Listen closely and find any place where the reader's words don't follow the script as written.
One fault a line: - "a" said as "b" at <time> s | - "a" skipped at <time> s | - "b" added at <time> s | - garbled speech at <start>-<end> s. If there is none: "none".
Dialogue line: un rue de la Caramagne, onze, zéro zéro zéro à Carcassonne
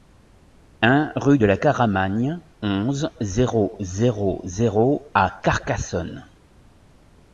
none